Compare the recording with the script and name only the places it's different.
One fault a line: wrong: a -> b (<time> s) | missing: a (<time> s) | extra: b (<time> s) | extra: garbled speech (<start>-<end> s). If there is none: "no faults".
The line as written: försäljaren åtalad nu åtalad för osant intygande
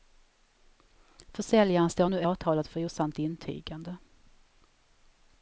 wrong: åtalad -> står (1.9 s)